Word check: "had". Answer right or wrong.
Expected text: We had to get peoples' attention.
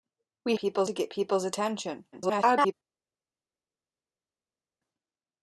wrong